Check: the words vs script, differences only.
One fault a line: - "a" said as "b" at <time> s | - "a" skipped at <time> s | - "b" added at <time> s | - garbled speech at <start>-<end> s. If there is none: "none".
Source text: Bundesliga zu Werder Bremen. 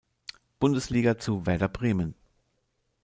none